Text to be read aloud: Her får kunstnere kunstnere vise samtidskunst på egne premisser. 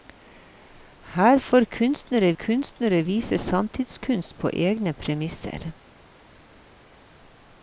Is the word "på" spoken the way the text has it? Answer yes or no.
yes